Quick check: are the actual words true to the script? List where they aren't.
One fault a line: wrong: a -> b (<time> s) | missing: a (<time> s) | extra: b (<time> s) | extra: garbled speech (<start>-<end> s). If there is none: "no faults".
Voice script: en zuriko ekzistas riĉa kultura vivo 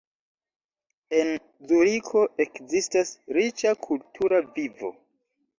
no faults